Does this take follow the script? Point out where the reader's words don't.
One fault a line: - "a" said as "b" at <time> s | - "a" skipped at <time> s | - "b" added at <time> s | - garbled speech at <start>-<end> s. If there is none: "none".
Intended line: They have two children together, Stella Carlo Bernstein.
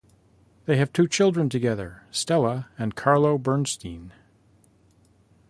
- "and" added at 2.8 s